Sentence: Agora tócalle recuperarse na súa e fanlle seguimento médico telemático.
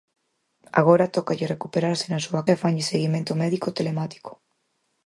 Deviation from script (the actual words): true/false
false